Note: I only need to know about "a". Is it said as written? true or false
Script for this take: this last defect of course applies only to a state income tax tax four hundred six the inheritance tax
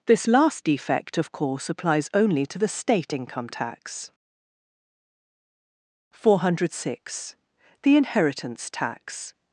false